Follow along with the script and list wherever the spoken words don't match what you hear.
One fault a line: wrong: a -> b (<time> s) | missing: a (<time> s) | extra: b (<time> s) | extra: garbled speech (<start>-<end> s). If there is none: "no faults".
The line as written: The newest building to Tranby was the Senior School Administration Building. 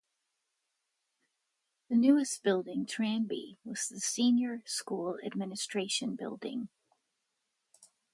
missing: to (2.9 s)